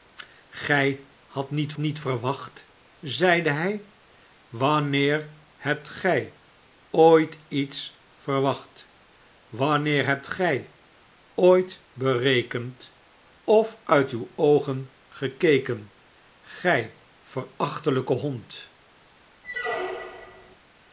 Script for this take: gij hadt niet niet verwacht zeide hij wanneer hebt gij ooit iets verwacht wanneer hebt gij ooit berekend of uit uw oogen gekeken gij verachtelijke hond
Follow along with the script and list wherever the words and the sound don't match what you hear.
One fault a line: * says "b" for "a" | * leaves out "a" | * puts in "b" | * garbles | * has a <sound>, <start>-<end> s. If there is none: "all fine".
* has a squeak, 19.4-20.6 s